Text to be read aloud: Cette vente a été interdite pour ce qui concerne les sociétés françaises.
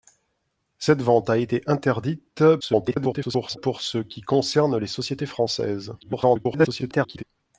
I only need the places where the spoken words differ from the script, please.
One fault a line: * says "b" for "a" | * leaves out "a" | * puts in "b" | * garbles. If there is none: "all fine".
* garbles
* garbles